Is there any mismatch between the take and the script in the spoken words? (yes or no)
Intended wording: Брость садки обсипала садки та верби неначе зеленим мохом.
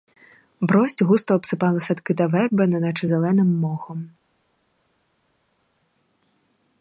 yes